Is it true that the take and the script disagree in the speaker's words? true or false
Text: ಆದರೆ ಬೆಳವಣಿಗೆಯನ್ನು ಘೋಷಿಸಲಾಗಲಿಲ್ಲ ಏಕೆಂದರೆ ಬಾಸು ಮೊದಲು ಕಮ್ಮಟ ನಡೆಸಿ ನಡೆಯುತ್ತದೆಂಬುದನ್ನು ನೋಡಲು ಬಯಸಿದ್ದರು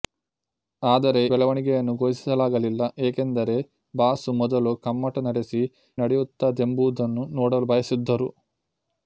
false